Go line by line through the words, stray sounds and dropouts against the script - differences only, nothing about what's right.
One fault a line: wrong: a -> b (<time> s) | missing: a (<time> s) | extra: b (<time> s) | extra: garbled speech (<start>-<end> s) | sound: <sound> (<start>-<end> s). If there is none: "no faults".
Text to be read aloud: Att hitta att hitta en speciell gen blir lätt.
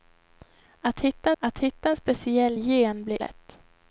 no faults